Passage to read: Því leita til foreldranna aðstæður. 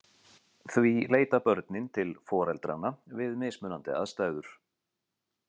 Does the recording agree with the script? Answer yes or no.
no